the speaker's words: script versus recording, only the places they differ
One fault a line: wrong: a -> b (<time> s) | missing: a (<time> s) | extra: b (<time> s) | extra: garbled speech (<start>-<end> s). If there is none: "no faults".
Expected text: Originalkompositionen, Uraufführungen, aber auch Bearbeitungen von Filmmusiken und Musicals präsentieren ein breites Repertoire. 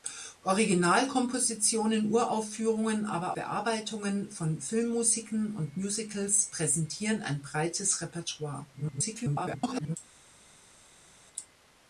missing: auch (3.4 s)
extra: garbled speech (8.7-10.0 s)